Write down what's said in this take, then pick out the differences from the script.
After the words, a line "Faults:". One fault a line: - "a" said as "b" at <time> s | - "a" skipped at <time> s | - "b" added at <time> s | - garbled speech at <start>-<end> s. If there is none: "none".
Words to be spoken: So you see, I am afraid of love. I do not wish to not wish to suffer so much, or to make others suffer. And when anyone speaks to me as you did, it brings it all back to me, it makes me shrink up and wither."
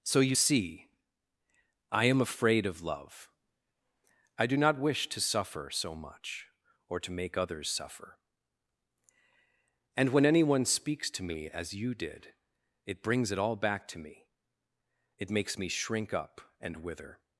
So you see, I am afraid of love. I do not wish to suffer so much, or to make others suffer. And when anyone speaks to me as you did, it brings it all back to me, it makes me shrink up and wither."
Faults:
- "not wish to" skipped at 5.2 s